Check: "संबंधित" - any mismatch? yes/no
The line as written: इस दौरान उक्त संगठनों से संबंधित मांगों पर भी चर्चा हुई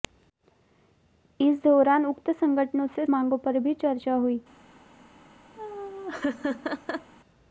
yes